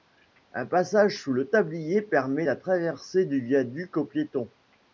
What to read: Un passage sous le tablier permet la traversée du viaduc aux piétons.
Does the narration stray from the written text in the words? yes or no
no